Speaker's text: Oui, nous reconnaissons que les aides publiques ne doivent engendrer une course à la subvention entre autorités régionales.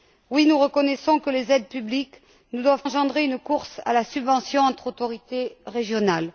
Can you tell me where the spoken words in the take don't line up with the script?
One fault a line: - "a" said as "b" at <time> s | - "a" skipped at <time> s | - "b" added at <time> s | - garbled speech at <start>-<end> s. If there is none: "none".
none